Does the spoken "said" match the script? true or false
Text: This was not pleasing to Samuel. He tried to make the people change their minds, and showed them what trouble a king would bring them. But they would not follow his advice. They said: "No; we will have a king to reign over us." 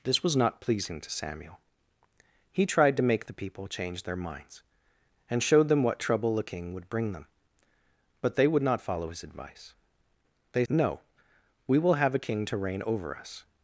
false